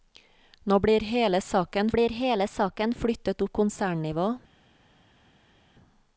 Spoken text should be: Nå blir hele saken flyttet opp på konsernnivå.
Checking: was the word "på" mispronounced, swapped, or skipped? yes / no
yes